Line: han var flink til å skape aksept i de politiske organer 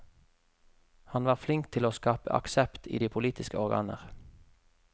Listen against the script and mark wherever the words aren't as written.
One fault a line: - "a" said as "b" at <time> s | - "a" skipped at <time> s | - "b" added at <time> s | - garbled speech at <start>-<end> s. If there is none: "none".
none